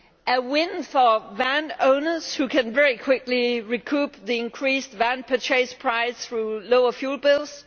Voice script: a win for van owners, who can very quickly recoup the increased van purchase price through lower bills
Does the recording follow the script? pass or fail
fail